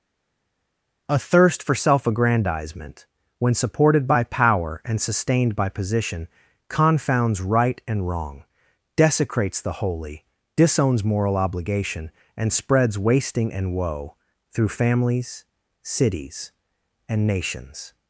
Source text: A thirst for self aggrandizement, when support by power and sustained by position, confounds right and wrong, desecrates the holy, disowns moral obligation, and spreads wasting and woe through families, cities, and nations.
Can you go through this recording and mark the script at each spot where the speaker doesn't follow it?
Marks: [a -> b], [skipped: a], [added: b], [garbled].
A thirst for self aggrandizement, when [support -> supported] by power and sustained by position, confounds right and wrong, desecrates the holy, disowns moral obligation, and spreads wasting and woe through families, cities, and nations.